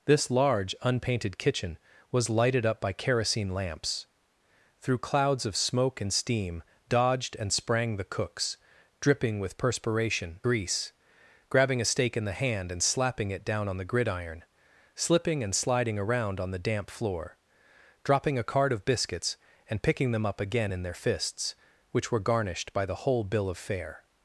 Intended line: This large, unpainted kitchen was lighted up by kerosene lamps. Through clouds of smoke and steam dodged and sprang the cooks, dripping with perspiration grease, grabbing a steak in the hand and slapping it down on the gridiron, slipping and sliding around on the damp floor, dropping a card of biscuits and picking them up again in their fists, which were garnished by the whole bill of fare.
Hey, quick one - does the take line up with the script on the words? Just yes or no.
yes